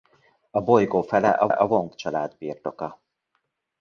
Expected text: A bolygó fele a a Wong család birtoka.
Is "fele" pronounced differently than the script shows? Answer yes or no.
no